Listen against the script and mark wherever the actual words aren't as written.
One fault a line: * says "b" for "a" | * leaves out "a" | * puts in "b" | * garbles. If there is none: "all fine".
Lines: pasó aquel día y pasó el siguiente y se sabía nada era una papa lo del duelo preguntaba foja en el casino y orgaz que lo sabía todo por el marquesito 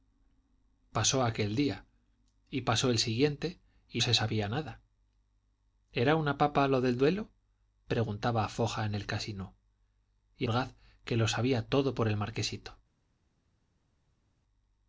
all fine